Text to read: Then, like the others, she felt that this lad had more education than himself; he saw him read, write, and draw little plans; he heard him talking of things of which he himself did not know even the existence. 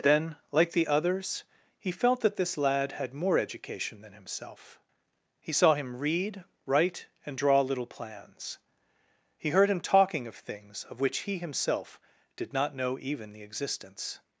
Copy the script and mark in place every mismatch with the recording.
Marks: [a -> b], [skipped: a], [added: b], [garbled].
Then, like the others, [she -> he] felt that this lad had more education than himself; he saw him read, write, and draw little plans; he heard him talking of things of which he himself did not know even the existence.